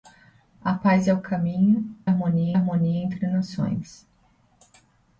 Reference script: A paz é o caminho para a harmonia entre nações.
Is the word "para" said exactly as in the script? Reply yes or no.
no